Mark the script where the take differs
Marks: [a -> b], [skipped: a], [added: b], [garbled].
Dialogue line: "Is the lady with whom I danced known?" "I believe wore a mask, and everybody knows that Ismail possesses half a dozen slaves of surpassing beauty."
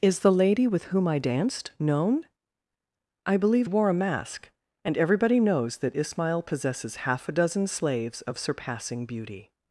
"Is the lady with whom I danced known?" "I believe wore a mask, and everybody knows that Ismail possesses half a dozen slaves of surpassing beauty."